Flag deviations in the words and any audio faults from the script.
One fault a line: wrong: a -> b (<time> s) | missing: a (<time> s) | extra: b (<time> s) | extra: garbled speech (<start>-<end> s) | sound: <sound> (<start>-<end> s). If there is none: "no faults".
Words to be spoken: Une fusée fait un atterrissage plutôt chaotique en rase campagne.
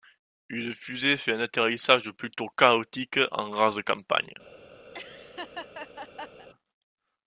sound: laugh (4.9-6.5 s)